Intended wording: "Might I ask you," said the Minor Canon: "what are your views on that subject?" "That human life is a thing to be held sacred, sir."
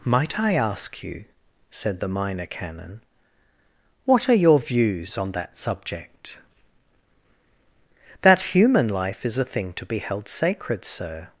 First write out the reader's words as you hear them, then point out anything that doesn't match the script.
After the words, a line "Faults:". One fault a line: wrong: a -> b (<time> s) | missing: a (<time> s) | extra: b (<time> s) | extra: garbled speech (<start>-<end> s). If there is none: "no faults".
"Might I ask you," said the Minor Canon: "what are your views on that subject?" "That human life is a thing to be held sacred, sir."
Faults:
no faults